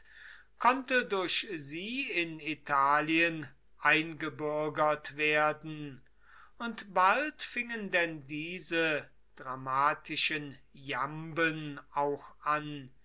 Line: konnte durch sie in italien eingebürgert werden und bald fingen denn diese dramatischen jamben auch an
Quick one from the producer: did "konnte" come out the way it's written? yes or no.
yes